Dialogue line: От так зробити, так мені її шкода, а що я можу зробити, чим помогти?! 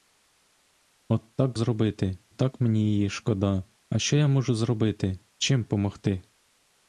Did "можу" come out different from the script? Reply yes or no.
no